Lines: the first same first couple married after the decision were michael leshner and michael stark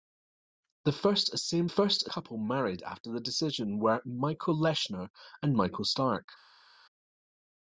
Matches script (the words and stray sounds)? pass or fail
pass